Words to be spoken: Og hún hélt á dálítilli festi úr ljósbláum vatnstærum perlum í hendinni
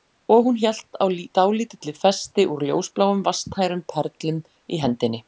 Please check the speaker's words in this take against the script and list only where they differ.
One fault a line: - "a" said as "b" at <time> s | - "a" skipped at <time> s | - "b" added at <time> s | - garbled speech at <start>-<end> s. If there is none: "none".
none